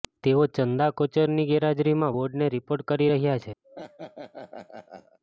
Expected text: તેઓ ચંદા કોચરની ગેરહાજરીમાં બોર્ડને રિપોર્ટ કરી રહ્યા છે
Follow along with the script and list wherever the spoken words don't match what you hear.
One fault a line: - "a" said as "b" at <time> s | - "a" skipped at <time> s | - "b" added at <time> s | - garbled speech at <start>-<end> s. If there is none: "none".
none